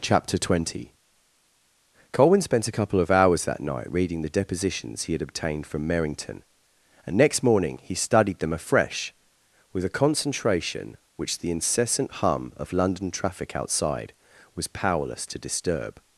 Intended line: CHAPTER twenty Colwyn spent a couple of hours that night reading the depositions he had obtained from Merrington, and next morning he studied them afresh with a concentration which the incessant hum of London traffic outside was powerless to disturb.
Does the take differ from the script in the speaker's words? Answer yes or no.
no